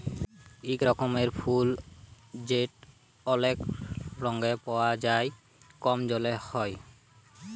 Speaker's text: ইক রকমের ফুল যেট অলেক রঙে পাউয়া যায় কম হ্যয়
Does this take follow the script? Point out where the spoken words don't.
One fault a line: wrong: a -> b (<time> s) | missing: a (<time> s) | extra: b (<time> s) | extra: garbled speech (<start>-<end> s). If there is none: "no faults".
extra: জলে (6.1 s)